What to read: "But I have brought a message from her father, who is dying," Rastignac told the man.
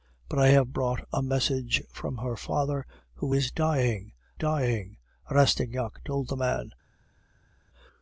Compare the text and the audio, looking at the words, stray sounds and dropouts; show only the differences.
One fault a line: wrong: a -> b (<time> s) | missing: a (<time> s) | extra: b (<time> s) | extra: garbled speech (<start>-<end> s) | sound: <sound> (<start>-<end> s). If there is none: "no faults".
extra: dying (4.3 s)